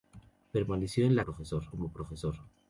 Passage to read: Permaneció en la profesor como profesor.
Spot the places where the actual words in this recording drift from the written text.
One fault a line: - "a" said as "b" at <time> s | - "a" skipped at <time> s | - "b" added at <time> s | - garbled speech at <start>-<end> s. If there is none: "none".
none